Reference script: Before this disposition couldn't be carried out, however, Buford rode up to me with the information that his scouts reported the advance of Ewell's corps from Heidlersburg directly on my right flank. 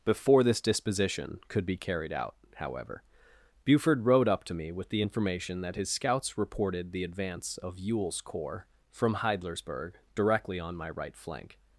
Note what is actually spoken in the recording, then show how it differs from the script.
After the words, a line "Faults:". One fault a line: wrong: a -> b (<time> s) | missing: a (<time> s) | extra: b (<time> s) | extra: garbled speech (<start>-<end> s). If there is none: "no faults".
Before this disposition could be carried out, however, Buford rode up to me with the information that his scouts reported the advance of Ewell's corps from Heidlersburg directly on my right flank.
Faults:
wrong: couldn't -> could (1.5 s)